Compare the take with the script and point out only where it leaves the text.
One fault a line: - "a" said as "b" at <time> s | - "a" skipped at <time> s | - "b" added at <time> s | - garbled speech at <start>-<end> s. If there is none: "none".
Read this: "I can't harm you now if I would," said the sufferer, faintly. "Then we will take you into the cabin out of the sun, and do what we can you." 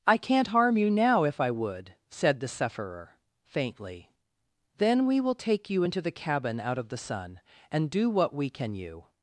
none